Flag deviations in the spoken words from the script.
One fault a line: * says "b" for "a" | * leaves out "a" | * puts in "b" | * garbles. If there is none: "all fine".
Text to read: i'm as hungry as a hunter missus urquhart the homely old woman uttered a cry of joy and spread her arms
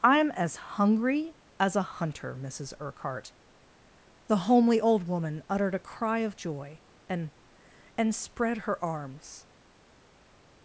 * puts in "and"